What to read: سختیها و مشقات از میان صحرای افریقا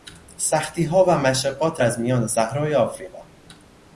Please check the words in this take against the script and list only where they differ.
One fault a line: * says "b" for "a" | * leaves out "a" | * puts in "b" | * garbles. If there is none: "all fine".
all fine